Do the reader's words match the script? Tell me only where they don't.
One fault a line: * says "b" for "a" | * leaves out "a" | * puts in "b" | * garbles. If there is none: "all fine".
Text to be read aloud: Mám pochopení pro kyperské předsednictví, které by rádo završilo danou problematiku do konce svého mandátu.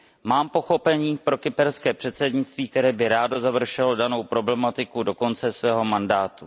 all fine